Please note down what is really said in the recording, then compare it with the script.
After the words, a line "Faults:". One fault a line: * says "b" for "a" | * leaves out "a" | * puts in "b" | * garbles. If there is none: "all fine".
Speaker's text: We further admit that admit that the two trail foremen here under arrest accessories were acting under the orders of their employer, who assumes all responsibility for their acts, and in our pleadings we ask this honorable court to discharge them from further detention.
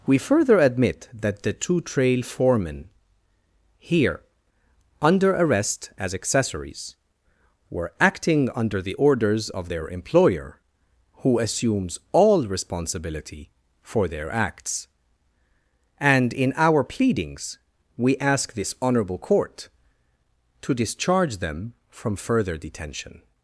We further admit that the two trail foremen here under arrest as accessories were acting under the orders of their employer, who assumes all responsibility for their acts, and in our pleadings we ask this honorable court to discharge them from further detention.
Faults:
* leaves out "admit that"
* puts in "as"